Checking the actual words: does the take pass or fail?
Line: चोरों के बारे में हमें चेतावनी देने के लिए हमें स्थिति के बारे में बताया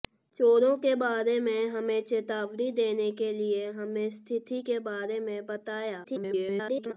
fail